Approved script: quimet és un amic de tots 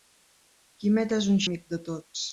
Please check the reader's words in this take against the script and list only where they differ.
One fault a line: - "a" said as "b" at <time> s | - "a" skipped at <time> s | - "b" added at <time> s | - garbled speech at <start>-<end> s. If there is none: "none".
none